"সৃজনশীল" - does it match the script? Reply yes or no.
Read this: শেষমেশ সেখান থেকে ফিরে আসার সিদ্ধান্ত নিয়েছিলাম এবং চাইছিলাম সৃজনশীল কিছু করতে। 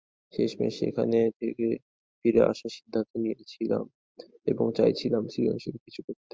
yes